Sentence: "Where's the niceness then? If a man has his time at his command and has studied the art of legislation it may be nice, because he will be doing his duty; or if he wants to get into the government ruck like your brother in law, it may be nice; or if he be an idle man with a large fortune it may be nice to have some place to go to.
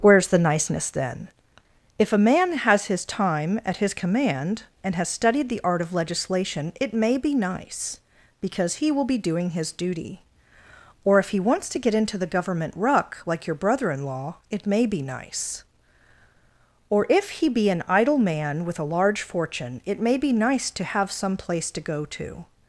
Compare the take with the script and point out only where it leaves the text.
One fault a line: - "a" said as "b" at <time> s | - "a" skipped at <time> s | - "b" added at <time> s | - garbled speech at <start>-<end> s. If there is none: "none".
none